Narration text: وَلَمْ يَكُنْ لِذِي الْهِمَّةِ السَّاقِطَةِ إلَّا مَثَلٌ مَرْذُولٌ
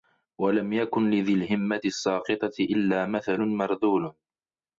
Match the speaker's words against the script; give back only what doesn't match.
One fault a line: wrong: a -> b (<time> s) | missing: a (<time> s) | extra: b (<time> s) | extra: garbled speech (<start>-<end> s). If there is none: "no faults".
no faults